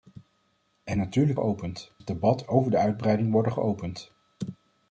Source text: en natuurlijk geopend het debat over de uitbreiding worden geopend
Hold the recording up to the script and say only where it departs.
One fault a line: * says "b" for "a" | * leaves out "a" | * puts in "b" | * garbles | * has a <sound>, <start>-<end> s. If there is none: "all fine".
all fine